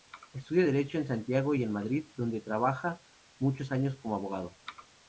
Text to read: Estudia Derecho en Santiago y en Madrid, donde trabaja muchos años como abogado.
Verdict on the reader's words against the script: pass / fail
pass